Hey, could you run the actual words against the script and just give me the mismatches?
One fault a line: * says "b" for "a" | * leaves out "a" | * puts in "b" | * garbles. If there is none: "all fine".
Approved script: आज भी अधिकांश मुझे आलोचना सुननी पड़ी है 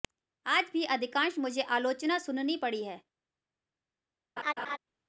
all fine